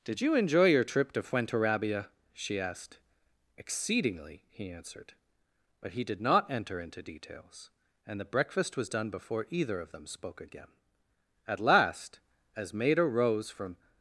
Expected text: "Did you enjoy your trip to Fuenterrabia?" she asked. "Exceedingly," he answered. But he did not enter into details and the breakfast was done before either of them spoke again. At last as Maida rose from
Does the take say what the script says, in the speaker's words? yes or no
yes